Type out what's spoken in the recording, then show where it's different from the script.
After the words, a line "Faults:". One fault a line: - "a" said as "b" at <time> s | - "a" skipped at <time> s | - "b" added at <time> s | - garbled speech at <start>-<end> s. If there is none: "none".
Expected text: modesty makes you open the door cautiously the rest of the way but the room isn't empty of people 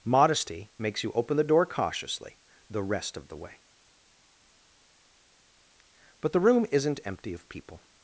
modesty makes you open the door cautiously the rest of the way but the room isn't empty of people
Faults:
none